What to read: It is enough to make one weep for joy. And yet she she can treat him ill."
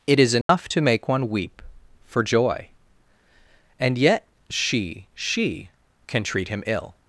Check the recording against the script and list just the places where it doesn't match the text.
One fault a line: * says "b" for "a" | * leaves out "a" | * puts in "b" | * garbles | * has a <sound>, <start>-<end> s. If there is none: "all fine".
* has a dropout, 0.4-0.5 s